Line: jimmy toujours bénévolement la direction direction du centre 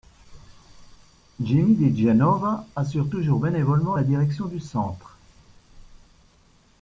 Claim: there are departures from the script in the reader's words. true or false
true